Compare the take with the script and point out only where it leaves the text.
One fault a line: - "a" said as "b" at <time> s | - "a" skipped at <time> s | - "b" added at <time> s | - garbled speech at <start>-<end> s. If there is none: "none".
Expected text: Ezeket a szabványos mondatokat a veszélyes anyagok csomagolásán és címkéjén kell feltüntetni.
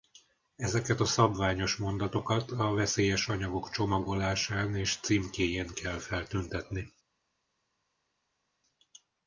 none